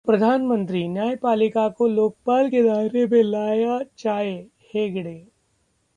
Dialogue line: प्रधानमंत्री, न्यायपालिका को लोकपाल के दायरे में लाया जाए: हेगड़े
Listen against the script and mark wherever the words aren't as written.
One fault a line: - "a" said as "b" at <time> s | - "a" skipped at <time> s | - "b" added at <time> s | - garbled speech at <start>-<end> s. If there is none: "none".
none